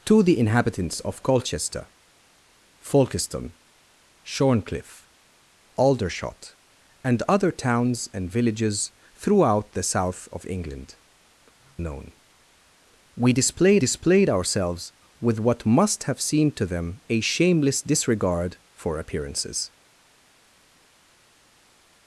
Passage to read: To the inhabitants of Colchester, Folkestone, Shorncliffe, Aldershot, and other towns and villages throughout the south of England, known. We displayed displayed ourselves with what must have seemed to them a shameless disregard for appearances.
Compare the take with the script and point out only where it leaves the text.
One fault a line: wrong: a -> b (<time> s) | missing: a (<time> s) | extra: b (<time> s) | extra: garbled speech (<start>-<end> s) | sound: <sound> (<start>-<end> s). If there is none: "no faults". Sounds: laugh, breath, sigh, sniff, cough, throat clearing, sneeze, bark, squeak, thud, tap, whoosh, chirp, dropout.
no faults